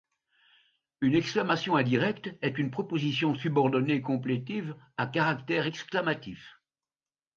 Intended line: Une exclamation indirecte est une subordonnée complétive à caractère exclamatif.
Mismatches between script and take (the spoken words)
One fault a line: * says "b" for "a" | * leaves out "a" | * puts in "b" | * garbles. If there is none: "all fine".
* puts in "proposition"